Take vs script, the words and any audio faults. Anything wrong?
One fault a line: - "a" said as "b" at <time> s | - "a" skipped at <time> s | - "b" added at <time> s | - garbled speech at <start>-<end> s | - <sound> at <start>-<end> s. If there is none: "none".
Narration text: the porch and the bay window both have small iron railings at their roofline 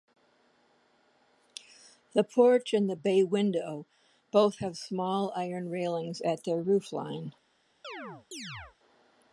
- chirp at 7.8-8.8 s